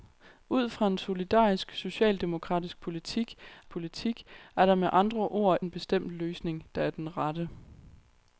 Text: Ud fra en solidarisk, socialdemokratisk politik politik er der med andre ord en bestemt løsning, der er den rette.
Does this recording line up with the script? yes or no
yes